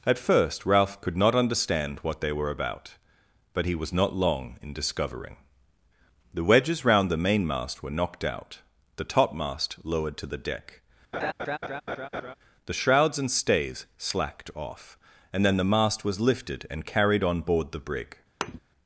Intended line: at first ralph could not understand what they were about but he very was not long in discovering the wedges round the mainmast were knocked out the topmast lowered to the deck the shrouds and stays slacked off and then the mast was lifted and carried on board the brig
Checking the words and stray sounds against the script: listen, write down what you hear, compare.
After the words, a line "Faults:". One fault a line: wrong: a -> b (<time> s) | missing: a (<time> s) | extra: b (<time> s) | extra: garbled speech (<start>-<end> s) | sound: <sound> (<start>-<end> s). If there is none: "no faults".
at first ralph could not understand what they were about but he was not long in discovering the wedges round the mainmast were knocked out the topmast lowered to the deck the shrouds and stays slacked off and then the mast was lifted and carried on board the brig
Faults:
missing: very (3.8 s)
sound: laugh (11.1-12.3 s)
sound: thud (18.4-18.6 s)